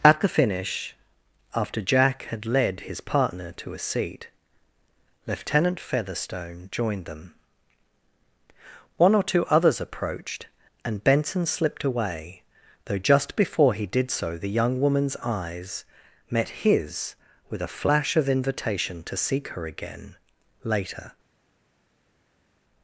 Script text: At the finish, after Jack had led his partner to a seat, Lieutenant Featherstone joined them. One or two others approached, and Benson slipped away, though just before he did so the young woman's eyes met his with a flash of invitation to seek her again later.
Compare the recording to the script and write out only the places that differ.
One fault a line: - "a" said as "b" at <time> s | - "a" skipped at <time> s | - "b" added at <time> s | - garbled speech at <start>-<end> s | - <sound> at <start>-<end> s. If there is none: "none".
none